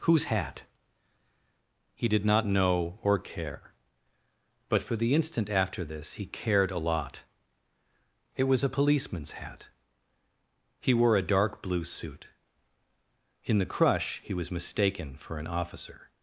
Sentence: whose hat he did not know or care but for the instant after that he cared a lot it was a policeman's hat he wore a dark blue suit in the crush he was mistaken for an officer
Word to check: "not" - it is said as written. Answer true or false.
true